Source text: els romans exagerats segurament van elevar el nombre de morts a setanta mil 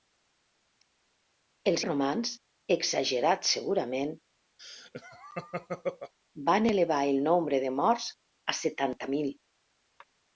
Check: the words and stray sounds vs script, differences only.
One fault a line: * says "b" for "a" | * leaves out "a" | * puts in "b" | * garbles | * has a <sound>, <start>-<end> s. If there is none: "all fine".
* has a laugh, 4.6-6.1 s